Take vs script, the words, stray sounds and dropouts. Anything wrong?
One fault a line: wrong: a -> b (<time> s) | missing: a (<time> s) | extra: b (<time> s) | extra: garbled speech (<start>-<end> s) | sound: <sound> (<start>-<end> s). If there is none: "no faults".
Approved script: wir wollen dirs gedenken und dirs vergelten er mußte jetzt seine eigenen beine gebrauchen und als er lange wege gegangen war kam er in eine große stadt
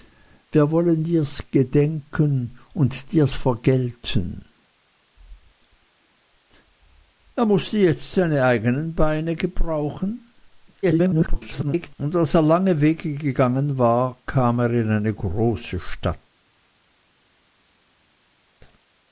extra: garbled speech (10.8-12.0 s)